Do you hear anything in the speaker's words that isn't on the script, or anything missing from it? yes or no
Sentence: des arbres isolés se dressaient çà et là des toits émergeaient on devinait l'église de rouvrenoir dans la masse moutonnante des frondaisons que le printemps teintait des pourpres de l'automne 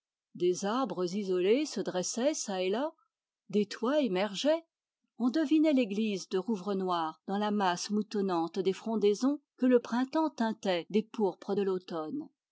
no